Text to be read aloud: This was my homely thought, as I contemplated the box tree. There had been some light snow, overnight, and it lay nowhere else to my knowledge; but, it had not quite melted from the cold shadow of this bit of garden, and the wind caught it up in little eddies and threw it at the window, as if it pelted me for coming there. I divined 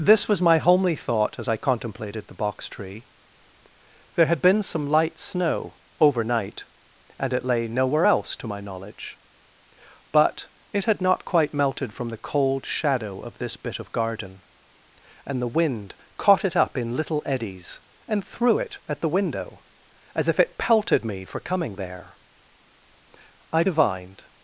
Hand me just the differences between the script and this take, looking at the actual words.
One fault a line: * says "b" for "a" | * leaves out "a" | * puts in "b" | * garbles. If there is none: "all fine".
all fine